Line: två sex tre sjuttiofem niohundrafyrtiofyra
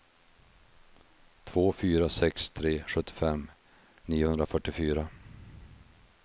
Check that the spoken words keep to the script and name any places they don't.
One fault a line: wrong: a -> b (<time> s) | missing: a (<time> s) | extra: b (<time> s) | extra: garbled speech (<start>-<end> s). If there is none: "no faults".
extra: fyra (1.7 s)